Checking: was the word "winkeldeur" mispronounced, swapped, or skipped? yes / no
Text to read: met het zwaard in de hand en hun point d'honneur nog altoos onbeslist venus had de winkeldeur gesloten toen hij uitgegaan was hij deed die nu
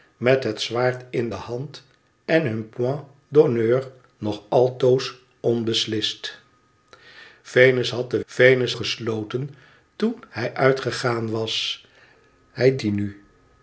yes